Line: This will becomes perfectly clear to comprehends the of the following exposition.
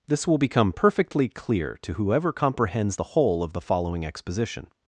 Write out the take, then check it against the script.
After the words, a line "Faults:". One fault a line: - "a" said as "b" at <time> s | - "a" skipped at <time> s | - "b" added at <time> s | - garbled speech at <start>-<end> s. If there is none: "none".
This will become perfectly clear to whoever comprehends the whole of the following exposition.
Faults:
- "becomes" said as "become" at 0.4 s
- "whoever" added at 1.9 s
- "whole" added at 3.0 s